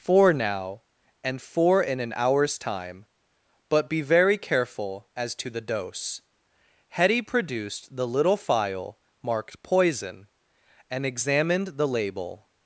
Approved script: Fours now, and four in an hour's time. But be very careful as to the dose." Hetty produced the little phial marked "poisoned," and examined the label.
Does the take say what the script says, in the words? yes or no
no